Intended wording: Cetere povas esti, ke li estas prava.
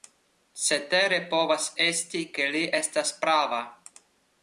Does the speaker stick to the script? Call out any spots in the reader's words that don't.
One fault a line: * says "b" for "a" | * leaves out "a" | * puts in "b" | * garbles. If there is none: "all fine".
all fine